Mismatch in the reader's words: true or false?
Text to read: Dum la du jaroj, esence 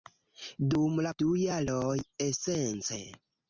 false